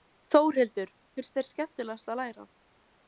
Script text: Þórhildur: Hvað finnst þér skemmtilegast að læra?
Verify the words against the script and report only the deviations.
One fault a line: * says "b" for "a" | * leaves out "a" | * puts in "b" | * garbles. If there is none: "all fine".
* leaves out "Hvað"